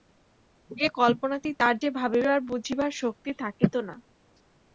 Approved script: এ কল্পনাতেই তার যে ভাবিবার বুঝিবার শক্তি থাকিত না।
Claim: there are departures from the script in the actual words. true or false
false